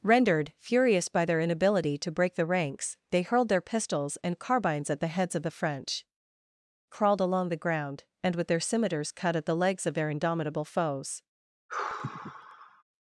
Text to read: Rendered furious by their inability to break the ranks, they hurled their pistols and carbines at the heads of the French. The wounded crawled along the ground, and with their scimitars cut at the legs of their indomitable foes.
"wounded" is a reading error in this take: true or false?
true